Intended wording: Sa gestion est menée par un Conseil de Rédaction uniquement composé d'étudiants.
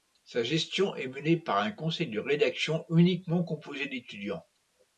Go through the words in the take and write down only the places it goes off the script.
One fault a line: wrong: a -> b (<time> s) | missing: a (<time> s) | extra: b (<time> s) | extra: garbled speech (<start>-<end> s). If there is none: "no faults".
no faults